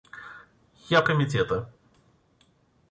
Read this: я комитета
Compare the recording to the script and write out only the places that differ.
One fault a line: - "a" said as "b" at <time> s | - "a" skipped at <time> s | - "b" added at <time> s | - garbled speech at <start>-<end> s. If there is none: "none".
none